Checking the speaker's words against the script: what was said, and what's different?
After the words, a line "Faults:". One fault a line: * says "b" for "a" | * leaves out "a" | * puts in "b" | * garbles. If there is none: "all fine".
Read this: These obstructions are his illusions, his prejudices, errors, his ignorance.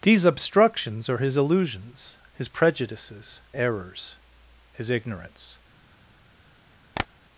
These obstructions are his illusions, his prejudices, errors, his ignorance.
Faults:
all fine